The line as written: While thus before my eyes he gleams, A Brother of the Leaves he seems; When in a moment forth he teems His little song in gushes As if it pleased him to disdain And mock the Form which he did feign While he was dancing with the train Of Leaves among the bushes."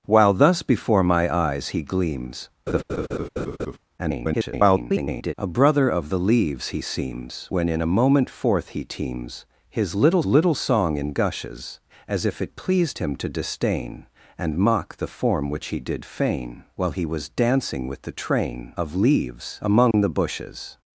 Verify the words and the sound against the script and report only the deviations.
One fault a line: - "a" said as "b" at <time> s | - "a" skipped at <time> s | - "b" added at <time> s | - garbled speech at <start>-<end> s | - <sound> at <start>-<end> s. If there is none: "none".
- laugh at 2.7-3.8 s
- garbled speech at 4.0-5.3 s
- "little" added at 10.3 s
- dropout at 19.9-19.9 s